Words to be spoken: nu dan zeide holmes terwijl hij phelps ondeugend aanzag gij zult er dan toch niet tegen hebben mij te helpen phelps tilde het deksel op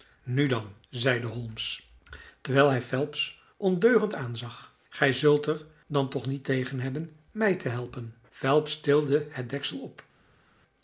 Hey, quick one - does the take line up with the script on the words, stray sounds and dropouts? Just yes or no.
yes